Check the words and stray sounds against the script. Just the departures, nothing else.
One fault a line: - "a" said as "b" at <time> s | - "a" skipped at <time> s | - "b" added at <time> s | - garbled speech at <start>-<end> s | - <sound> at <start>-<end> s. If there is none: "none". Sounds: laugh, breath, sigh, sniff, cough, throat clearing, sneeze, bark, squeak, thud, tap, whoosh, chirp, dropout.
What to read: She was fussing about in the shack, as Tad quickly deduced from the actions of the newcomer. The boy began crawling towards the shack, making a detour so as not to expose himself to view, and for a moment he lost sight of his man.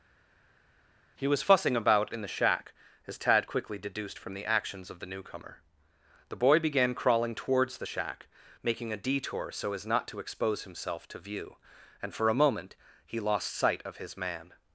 - "She" said as "He" at 1.2 s